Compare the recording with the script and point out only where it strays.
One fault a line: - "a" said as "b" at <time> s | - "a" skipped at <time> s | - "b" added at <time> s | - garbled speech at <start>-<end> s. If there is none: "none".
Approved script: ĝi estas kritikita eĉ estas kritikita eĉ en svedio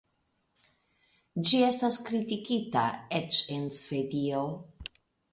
- "estas kritikita eĉ" skipped at 3.4 s